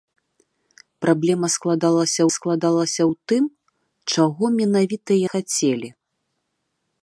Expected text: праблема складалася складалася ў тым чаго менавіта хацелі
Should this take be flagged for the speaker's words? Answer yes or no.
no